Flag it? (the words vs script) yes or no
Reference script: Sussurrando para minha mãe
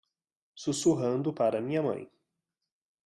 no